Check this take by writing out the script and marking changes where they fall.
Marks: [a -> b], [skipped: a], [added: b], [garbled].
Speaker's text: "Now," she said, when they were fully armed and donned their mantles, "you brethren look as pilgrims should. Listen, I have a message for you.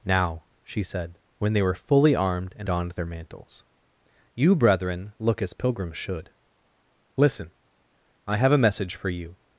"Now," she said, when they were fully armed and donned their mantles, "you brethren look as pilgrims should. Listen, I have a message for you.